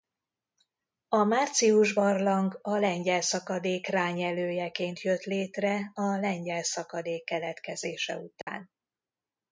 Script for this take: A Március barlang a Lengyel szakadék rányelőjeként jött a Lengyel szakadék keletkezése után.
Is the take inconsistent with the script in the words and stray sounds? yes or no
yes